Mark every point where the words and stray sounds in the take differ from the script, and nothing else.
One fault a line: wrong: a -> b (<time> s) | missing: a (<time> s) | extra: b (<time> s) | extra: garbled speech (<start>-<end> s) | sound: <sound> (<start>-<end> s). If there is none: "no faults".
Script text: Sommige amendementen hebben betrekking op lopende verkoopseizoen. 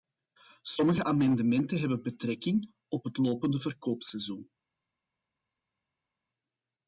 extra: het (3.0 s)